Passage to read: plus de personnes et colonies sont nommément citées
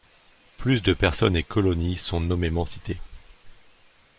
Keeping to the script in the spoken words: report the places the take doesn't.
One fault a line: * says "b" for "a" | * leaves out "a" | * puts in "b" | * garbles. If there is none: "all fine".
all fine